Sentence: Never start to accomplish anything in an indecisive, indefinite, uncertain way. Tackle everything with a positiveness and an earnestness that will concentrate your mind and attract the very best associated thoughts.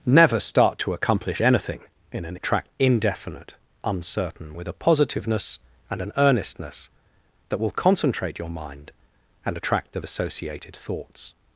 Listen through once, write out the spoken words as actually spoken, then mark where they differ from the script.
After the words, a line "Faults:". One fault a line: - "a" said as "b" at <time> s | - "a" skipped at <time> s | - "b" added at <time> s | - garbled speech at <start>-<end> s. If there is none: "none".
Never start to accomplish anything in an attract, indefinite, uncertain with a positiveness and an earnestness that will concentrate your mind and attract the associated thoughts.
Faults:
- "indecisive" said as "attract" at 2.3 s
- "way Tackle everything" skipped at 4.5 s
- "very best" skipped at 10.0 s